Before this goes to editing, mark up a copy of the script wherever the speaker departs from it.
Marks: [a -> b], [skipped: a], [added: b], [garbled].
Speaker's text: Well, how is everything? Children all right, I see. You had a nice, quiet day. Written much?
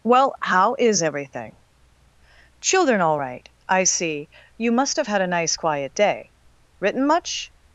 Well, how is everything? Children all right, I see. You [added: must have] had a nice, quiet day. Written much?